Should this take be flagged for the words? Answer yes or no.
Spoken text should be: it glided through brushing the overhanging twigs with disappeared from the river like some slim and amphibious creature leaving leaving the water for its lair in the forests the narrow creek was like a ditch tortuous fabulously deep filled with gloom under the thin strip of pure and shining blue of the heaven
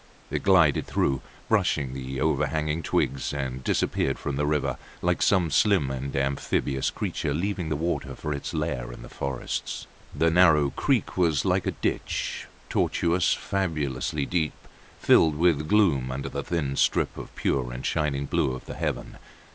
yes